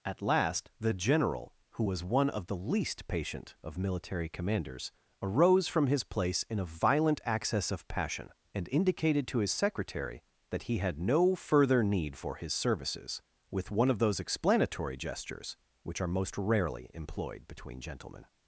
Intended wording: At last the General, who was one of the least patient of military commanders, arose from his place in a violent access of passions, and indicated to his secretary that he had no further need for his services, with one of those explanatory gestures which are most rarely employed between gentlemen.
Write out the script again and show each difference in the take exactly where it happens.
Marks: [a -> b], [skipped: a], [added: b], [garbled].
At last the General, who was one of the least patient of military commanders, arose from his place in a violent access of [passions, -> passion] and indicated to his secretary that he had no further need for his services, with one of those explanatory gestures which are most rarely employed between gentlemen.